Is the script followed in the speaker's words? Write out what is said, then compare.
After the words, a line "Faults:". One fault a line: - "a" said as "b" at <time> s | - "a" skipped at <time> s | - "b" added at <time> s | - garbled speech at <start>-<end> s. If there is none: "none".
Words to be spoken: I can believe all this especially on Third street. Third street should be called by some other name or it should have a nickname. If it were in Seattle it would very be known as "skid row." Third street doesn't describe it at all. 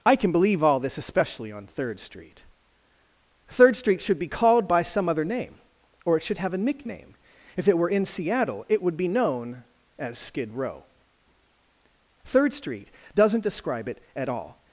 I can believe all this especially on Third street. Third street should be called by some other name or it should have a nickname. If it were in Seattle it would be known as "skid row." Third street doesn't describe it at all.
Faults:
- "very" skipped at 9.0 s